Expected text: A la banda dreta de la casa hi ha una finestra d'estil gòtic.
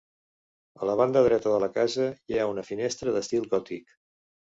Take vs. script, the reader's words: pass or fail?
pass